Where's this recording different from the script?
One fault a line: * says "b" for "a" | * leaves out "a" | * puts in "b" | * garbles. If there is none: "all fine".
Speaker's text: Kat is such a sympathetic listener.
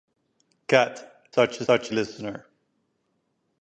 * leaves out "is"
* says "such" for "sympathetic"